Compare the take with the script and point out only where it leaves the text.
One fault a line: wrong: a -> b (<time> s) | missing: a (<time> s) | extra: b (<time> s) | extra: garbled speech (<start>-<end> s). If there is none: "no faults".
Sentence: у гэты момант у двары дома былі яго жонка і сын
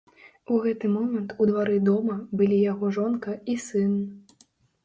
no faults